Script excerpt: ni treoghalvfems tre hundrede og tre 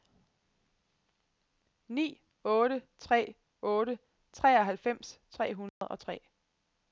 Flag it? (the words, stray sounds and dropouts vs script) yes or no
yes